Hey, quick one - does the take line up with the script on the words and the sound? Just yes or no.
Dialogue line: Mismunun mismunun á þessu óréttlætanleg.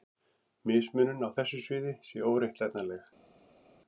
no